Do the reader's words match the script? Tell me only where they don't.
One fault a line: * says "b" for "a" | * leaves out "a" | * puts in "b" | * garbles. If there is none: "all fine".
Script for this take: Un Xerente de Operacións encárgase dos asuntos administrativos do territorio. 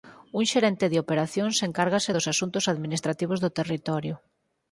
all fine